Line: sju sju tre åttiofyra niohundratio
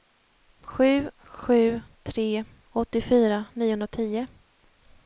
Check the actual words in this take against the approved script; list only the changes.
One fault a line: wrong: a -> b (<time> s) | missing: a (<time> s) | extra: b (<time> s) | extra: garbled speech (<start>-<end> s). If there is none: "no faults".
no faults